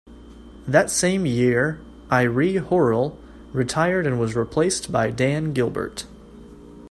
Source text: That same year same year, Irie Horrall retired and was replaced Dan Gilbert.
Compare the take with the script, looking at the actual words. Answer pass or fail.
fail